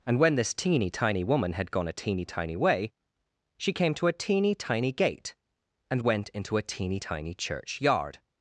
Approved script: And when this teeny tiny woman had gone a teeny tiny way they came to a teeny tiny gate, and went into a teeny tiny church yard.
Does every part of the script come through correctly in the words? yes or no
no